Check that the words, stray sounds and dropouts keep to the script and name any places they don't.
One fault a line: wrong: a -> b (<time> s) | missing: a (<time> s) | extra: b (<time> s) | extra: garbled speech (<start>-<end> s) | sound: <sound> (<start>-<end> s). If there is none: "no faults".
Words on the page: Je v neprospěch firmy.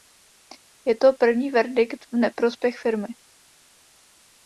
extra: to první verdikt (0.9 s)